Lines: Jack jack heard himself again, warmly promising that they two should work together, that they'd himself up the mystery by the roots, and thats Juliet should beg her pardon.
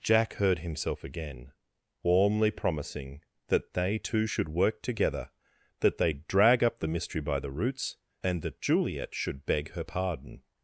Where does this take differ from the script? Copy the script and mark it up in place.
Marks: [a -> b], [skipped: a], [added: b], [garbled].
Jack [skipped: jack] heard himself again, warmly promising that they two should work together, that they'd [himself -> drag] up the mystery by the roots, and [thats -> that] Juliet should beg her pardon.